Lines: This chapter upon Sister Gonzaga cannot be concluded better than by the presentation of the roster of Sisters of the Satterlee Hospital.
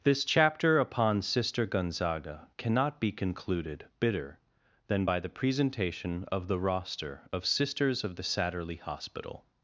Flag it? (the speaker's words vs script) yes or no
yes